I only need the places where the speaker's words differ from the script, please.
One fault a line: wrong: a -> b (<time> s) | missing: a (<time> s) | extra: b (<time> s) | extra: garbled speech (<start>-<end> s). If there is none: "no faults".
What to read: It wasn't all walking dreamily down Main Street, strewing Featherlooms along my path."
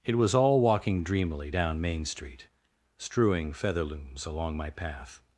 wrong: wasn't -> was (0.1 s)